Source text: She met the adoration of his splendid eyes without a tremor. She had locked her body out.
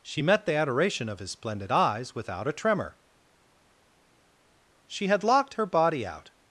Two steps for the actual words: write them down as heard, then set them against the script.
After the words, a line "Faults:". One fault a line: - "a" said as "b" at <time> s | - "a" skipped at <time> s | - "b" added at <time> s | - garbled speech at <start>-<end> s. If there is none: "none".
She met the adoration of his splendid eyes without a tremor. She had locked her body out.
Faults:
none